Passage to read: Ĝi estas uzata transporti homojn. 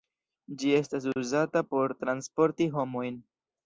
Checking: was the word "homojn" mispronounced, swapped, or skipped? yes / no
no